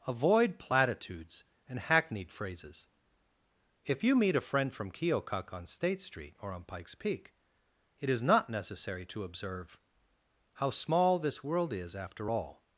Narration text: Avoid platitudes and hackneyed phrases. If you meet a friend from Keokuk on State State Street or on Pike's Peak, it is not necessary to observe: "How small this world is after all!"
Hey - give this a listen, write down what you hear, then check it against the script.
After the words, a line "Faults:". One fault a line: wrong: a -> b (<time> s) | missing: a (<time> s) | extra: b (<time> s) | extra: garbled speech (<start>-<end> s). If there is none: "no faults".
Avoid platitudes and hackneyed phrases. If you meet a friend from Keokuk on State Street or on Pike's Peak, it is not necessary to observe: "How small this world is after all!"
Faults:
missing: State (6.0 s)